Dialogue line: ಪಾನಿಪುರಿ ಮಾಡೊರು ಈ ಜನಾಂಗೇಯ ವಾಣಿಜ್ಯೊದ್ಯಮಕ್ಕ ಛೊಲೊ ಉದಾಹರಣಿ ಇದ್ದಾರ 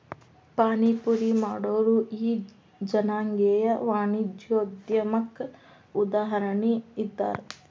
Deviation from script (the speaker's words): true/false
true